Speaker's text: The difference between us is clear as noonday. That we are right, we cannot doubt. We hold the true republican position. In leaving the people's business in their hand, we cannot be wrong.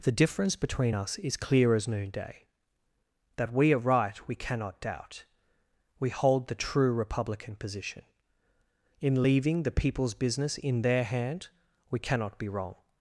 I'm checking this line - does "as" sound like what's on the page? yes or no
yes